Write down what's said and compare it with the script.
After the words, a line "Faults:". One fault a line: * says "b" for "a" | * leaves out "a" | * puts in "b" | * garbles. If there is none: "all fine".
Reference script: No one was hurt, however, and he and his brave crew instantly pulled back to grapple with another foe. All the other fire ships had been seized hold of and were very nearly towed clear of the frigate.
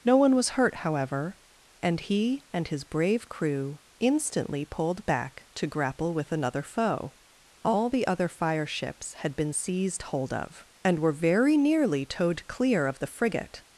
No one was hurt, however, and he and his brave crew instantly pulled back to grapple with another foe. All the other fire ships had been seized hold of and were very nearly towed clear of the frigate.
Faults:
all fine